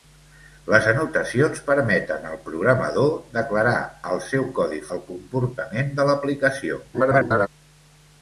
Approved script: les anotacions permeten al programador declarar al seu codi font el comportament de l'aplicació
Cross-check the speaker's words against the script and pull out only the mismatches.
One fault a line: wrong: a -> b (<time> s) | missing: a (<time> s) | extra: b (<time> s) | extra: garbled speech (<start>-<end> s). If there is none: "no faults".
missing: font (4.8 s)
extra: garbled speech (6.9-7.5 s)